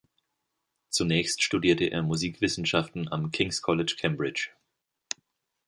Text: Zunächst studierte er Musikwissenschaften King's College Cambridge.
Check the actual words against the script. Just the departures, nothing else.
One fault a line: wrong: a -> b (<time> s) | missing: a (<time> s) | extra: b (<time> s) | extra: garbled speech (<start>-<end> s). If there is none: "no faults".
extra: am (3.1 s)